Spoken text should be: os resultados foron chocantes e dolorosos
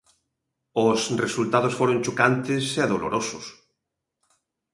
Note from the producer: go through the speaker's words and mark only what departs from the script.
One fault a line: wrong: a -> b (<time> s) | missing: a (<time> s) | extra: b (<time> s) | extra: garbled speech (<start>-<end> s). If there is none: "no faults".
no faults